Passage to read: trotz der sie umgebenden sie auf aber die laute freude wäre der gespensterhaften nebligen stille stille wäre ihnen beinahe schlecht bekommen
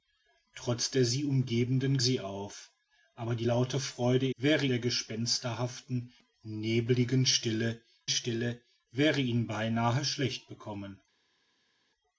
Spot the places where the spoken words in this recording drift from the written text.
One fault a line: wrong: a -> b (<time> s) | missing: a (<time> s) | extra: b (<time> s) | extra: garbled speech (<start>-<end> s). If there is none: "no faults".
no faults